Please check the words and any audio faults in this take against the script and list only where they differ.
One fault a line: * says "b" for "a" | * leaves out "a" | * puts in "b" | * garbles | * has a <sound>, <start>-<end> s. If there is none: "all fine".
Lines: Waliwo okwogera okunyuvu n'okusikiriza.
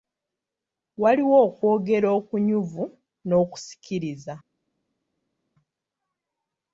all fine